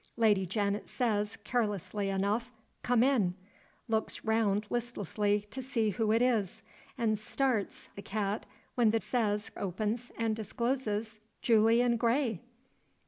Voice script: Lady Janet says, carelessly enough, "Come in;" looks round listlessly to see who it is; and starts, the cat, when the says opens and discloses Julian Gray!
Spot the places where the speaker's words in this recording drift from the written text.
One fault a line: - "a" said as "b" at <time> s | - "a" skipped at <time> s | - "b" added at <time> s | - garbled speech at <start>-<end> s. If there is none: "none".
none